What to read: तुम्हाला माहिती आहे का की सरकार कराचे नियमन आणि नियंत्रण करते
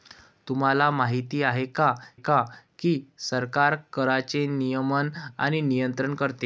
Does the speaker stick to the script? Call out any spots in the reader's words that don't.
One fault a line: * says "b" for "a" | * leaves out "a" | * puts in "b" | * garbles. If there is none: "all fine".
* puts in "का"